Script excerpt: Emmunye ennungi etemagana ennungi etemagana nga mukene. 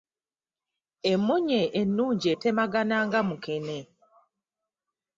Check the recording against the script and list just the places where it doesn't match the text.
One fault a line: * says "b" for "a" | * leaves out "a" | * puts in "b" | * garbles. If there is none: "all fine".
* leaves out "ennungi etemagana"